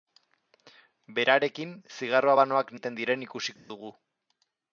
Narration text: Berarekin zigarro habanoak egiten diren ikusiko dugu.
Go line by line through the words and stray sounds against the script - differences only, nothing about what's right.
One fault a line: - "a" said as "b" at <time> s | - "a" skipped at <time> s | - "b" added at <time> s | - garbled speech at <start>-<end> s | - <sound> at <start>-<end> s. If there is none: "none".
- dropout at 3.6-3.7 s